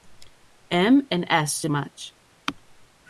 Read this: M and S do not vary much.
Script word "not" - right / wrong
wrong